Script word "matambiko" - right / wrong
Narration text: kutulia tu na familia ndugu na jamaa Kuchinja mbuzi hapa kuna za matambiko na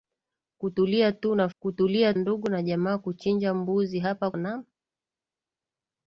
wrong